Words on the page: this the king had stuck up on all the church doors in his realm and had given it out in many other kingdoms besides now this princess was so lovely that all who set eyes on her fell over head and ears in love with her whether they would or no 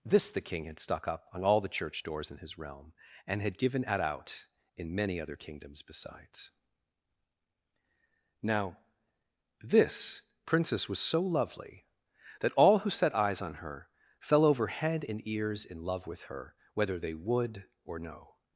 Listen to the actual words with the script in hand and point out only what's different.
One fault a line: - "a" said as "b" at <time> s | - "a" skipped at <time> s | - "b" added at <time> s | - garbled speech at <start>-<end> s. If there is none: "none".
- "it" said as "at" at 3.9 s